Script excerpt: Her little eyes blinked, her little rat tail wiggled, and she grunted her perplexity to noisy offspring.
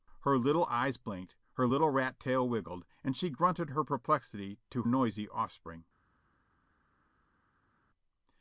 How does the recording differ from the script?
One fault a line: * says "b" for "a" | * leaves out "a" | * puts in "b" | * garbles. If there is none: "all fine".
all fine